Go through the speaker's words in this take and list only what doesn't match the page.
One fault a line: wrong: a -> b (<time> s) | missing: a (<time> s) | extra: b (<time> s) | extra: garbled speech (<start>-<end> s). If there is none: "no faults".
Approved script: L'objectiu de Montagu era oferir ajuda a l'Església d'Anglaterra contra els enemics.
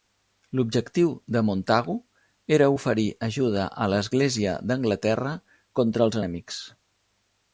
no faults